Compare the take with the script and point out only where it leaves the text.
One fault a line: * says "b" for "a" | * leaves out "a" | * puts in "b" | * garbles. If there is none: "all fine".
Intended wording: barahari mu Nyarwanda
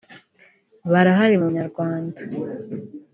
all fine